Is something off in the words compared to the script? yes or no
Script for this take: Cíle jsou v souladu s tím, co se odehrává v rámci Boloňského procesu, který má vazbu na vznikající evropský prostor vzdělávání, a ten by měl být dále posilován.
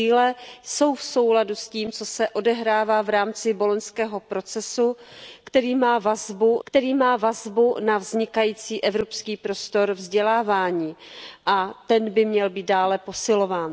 yes